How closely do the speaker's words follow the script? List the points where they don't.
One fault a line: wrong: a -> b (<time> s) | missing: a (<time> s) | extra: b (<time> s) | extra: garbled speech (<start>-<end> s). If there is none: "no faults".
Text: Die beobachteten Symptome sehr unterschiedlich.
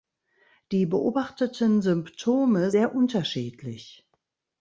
no faults